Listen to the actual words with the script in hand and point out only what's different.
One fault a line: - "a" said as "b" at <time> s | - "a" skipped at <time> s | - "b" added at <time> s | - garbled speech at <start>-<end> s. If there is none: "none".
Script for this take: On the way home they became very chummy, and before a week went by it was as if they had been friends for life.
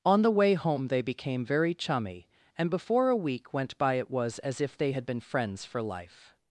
none